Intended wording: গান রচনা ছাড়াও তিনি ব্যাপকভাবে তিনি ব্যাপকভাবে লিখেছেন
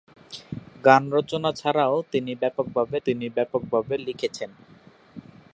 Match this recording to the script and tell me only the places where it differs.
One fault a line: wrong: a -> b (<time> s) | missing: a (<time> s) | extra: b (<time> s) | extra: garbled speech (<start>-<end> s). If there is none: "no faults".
no faults